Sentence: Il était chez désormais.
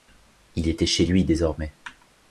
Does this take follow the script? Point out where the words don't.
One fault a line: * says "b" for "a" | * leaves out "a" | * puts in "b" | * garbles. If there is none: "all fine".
* puts in "lui"